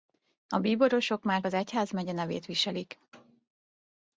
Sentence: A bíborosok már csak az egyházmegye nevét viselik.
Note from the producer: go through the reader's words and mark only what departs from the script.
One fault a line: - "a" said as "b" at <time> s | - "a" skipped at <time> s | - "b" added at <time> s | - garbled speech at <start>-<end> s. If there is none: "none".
- "csak" skipped at 1.4 s